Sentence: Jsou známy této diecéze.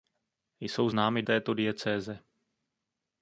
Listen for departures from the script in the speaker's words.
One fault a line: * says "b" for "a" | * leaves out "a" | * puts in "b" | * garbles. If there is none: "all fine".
all fine